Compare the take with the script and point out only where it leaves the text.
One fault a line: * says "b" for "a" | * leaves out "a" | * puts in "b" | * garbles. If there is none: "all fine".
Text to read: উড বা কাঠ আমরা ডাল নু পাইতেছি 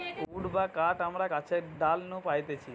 * puts in "গাছের"